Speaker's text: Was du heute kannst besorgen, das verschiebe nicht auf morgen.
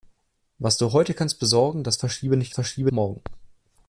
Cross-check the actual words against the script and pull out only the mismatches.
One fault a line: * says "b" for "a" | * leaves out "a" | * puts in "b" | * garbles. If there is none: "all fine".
* says "verschiebe" for "auf"